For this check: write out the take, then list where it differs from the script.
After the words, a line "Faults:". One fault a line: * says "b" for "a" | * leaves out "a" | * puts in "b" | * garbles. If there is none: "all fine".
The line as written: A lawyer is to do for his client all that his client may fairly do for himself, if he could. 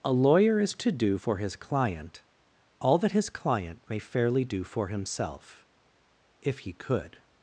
A lawyer is to do for his client all that his client may fairly do for himself, if he could.
Faults:
all fine